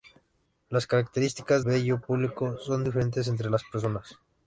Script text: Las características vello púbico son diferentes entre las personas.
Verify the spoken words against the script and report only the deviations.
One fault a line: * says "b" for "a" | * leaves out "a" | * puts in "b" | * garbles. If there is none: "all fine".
all fine